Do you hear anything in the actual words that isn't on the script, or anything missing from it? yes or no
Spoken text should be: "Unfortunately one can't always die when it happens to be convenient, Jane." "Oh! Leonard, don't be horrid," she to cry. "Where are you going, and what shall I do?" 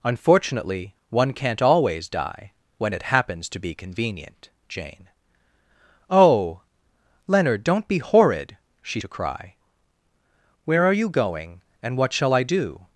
no